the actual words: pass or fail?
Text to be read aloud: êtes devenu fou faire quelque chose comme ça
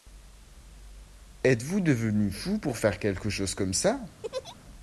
fail